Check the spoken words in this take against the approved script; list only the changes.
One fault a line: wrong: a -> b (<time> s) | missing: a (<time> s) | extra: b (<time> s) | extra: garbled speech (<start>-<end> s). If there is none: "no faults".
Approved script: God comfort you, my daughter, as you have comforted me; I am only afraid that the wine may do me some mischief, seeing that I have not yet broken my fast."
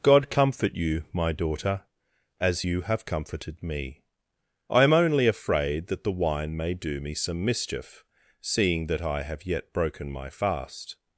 missing: not (9.4 s)